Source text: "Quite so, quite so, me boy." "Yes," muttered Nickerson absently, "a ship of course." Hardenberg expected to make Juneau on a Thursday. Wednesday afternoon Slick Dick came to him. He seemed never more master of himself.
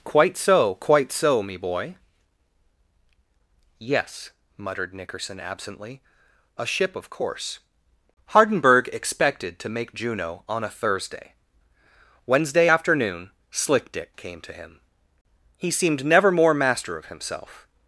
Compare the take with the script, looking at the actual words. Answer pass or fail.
pass